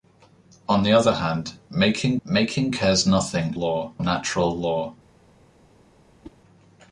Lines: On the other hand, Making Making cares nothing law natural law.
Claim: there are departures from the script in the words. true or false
false